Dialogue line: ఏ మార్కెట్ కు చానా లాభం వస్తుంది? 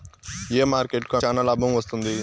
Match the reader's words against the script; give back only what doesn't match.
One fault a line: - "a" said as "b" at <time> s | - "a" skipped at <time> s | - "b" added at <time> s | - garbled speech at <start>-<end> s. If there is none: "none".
none